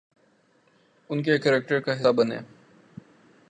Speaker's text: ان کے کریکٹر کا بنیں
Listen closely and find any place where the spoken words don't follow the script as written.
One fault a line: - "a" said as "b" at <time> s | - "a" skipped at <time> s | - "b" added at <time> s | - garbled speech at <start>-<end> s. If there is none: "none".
none